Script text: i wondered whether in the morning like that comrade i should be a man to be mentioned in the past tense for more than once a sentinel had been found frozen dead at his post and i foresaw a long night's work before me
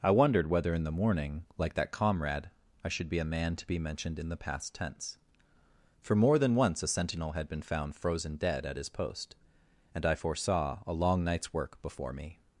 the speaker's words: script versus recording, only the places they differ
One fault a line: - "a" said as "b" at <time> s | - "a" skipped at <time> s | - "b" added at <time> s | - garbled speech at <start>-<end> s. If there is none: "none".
none